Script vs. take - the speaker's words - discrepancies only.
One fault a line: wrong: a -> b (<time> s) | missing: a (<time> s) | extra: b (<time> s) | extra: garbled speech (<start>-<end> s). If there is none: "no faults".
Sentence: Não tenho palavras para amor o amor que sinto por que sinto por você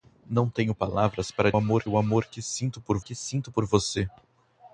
no faults